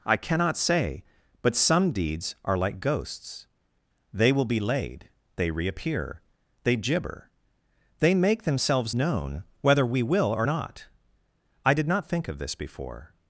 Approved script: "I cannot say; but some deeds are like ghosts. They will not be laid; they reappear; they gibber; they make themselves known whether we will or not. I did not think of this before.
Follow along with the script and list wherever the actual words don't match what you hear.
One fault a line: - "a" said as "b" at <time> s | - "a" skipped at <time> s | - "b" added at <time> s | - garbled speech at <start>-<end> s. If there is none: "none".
- "not" skipped at 4.5 s